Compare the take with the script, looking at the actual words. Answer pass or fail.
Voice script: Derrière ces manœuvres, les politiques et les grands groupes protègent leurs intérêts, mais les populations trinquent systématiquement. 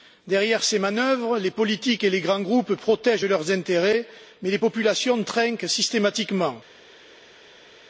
pass